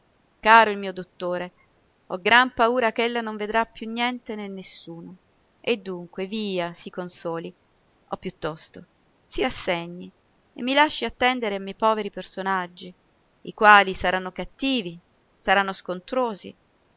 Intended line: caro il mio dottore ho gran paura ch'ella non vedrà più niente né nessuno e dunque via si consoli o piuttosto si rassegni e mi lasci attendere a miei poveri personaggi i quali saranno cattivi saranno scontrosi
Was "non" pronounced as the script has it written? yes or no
yes